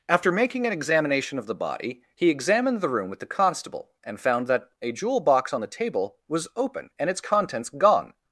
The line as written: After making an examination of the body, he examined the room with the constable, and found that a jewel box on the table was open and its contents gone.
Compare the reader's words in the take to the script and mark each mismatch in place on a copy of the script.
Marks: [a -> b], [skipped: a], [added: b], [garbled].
After making an examination of the body, he examined the room with the constable, and found that a jewel box on the table was open and its contents gone.